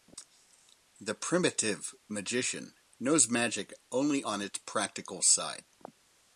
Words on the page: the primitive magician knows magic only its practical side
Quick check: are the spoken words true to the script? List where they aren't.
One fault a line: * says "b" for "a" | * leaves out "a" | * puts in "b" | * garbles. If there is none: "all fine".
* puts in "on"